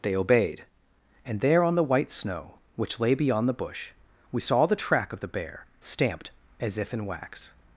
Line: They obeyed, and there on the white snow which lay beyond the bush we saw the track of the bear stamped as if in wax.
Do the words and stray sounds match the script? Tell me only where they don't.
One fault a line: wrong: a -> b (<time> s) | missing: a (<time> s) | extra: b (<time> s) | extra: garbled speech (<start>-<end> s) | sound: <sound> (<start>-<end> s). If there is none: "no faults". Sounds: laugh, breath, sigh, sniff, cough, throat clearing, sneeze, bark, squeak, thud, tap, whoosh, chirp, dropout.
no faults